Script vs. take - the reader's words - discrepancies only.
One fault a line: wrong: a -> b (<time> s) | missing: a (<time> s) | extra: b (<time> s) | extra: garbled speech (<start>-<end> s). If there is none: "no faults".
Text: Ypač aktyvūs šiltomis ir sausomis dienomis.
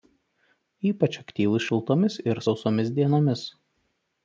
no faults